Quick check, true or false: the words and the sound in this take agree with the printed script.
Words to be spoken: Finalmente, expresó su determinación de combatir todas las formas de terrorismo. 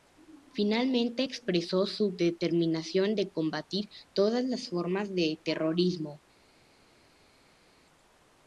true